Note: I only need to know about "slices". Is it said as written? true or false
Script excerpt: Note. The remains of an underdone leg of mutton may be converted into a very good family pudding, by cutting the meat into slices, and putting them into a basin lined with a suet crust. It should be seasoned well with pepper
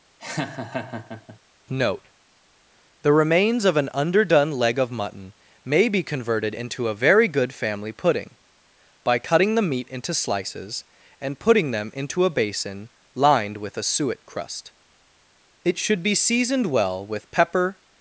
true